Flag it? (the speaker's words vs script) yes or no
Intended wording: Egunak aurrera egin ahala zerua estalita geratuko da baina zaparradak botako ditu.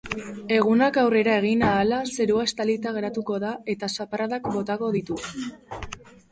yes